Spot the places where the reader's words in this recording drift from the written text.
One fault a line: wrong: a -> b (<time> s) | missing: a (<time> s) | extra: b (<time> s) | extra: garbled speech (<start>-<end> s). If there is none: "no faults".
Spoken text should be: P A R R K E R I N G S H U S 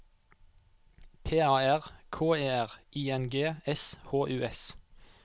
missing: R (1.8 s)